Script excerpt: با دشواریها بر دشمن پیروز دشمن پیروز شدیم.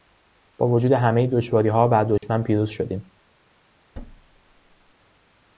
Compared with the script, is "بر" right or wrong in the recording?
right